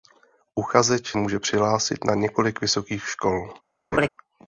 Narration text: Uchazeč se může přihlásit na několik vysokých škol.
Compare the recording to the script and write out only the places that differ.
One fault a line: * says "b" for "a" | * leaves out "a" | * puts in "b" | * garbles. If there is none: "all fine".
* leaves out "se"